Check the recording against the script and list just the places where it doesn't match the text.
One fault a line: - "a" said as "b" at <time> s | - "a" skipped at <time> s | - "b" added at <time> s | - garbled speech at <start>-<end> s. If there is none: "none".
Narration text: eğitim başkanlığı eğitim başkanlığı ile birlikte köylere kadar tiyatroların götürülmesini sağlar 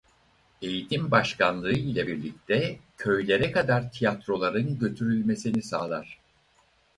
- "eğitim başkanlığı" skipped at 1.7 s